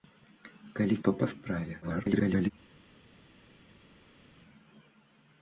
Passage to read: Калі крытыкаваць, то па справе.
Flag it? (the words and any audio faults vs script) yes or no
yes